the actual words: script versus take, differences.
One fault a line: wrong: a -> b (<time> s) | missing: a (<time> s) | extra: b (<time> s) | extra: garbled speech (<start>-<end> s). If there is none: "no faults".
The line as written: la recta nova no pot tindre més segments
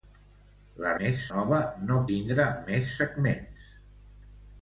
wrong: recta -> més (1.0 s)
missing: pot (2.0 s)